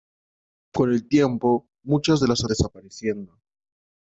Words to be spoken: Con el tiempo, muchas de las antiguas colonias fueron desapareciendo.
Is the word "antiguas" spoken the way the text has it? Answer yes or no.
no